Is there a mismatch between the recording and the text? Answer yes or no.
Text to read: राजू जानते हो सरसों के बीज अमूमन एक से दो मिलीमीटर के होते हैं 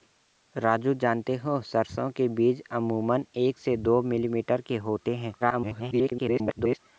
yes